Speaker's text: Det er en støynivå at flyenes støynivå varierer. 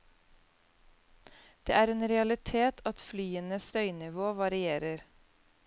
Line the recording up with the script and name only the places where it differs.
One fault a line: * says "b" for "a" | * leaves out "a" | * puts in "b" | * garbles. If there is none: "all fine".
* says "realitet" for "støynivå"